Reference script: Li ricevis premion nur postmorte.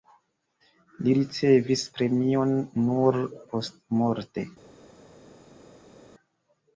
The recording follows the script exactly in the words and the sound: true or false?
true